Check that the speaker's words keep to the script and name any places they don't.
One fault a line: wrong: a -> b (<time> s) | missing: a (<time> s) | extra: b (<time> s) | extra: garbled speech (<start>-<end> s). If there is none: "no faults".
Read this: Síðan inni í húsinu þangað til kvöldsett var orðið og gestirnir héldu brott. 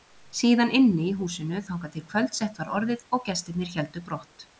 no faults